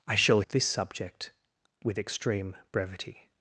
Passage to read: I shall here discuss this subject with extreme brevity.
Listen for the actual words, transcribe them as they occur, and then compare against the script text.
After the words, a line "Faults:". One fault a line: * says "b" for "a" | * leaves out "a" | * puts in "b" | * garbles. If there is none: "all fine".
I shall this subject with extreme brevity.
Faults:
* leaves out "here discuss"